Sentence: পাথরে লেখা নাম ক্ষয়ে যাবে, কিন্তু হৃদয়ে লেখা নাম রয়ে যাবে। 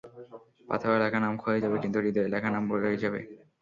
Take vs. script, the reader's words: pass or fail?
pass